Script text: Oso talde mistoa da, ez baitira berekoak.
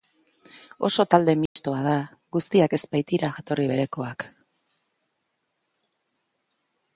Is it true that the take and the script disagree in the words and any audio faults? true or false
true